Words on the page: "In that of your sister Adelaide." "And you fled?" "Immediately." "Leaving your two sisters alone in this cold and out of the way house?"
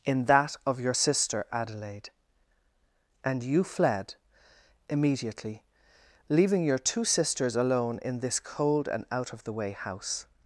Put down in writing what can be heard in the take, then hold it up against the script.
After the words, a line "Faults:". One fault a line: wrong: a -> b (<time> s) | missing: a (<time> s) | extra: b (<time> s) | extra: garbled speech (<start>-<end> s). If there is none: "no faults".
"In that of your sister Adelaide." "And you fled?" "Immediately." "Leaving your two sisters alone in this cold and out of the way house?"
Faults:
no faults